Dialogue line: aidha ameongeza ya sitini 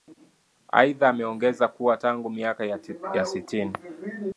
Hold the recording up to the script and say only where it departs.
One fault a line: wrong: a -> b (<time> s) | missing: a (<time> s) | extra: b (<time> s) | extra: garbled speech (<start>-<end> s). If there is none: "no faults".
extra: kuwa tangu miaka (1.7 s)